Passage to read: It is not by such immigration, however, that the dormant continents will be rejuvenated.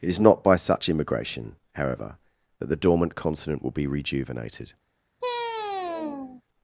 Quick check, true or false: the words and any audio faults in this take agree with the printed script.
false